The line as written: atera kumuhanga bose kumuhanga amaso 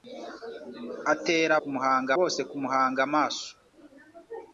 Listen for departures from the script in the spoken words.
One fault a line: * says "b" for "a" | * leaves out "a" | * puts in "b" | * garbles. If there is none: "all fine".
all fine